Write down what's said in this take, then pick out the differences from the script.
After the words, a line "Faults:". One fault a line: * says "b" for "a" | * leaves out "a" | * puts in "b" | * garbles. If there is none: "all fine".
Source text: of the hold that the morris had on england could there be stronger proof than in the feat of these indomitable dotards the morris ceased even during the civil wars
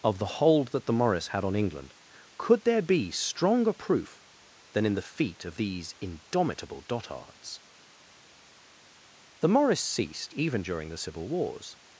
of the hold that the morris had on england could there be stronger proof than in the feat of these indomitable dotards the morris ceased even during the civil wars
Faults:
all fine